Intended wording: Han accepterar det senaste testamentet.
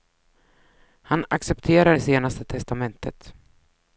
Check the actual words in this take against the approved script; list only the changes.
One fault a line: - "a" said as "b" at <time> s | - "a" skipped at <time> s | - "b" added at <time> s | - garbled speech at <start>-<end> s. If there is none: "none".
none